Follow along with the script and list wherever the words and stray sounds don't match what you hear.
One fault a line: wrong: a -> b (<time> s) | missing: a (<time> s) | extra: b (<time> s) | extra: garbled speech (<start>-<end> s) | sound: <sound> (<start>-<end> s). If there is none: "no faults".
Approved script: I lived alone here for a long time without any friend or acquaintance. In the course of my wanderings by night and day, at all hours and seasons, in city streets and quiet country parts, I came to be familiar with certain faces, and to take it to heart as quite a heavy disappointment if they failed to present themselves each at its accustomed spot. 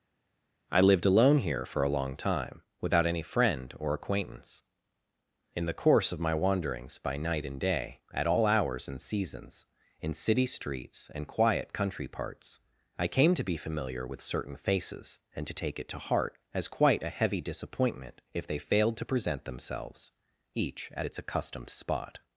no faults